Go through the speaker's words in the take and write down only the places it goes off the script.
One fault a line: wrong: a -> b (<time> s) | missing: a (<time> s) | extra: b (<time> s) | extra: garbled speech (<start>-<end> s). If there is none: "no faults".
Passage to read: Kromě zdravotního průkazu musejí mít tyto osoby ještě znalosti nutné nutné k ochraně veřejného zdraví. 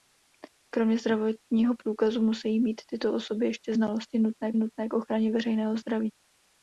no faults